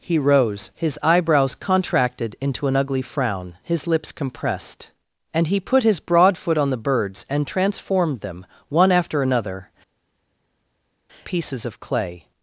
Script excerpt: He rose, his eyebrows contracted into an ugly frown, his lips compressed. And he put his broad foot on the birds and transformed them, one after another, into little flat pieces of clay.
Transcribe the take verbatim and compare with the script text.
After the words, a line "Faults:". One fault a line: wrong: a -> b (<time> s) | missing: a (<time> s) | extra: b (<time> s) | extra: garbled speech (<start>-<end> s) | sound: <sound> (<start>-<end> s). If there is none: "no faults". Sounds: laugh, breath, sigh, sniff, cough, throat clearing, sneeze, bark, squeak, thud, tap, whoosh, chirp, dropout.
He rose, his eyebrows contracted into an ugly frown, his lips compressed. And he put his broad foot on the birds and transformed them, one after another, pieces of clay.
Faults:
missing: into little flat (9.7 s)